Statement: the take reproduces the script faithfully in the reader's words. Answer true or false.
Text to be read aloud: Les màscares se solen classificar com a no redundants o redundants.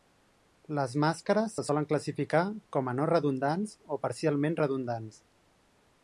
false